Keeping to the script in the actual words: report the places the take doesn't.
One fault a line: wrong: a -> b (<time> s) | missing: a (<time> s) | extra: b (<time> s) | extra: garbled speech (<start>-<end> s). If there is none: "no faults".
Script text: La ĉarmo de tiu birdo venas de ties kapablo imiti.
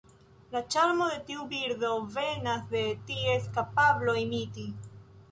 no faults